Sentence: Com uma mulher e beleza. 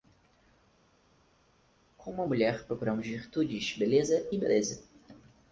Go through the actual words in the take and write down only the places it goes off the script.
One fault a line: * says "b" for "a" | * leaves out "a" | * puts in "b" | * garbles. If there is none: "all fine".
* puts in "procuramos virtudes beleza"